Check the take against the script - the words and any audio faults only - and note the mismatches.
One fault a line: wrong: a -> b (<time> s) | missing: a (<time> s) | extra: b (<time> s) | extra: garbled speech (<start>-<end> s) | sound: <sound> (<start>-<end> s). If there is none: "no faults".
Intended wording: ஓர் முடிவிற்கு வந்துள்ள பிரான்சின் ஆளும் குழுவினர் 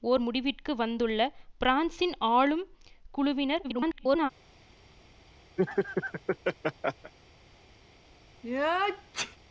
extra: garbled speech (3.6-4.3 s)
sound: laugh (5.6-7.1 s)
sound: sneeze (8.4-9.4 s)